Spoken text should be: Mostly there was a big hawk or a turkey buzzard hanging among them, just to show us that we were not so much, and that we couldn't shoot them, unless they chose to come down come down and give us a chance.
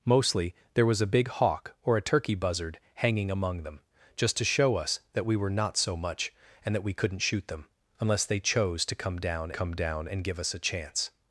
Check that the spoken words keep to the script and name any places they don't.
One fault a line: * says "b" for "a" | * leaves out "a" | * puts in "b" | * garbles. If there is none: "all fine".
all fine